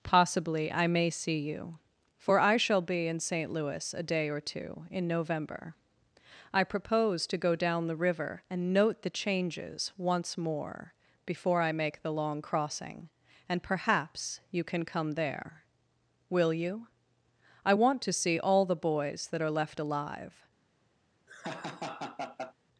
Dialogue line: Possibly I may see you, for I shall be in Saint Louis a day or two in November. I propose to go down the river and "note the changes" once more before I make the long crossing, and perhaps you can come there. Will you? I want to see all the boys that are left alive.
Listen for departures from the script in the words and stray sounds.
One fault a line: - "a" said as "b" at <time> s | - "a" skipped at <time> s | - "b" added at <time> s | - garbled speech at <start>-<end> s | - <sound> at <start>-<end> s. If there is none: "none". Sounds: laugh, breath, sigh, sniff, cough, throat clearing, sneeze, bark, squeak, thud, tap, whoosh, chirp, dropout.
- laugh at 21.3-22.5 s